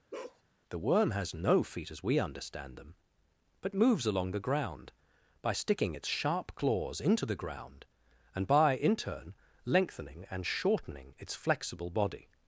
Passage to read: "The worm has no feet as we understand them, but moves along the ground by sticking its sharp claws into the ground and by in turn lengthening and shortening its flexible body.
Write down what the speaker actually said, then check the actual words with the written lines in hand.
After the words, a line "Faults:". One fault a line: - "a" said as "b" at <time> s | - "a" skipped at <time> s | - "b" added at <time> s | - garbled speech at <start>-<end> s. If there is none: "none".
"The worm has no feet as we understand them, but moves along the ground by sticking its sharp claws into the ground and by in turn lengthening and shortening its flexible body.
Faults:
none